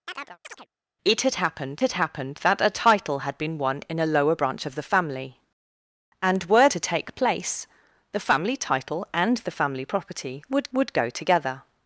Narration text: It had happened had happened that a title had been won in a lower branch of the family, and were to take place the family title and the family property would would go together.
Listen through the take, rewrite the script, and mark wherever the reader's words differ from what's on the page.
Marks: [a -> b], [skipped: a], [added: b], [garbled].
It had happened had happened that a title had been won in a lower branch of the family, and were to take place the family title and the family property would would go together.